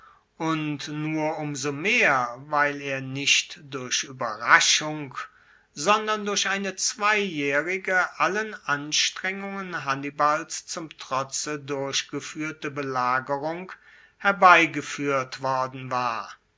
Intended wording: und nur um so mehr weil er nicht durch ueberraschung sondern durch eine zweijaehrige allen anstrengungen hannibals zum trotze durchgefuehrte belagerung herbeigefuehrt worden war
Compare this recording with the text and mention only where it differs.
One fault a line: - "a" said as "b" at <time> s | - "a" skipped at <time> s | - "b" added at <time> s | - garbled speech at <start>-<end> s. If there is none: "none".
none